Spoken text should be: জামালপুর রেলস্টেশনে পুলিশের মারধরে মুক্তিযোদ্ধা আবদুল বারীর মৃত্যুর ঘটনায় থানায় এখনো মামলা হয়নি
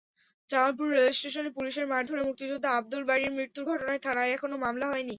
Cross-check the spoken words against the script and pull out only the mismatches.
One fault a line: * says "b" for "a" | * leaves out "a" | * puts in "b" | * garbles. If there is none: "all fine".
all fine